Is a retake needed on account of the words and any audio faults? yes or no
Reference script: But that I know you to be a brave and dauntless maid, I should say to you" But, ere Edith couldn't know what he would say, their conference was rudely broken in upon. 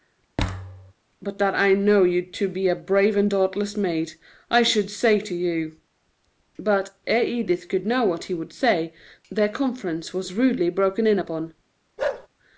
yes